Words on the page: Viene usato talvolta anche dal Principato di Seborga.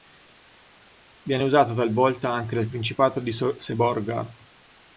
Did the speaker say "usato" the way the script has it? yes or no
yes